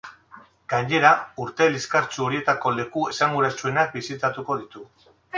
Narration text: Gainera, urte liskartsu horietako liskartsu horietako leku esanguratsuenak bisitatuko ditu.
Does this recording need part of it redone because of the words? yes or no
yes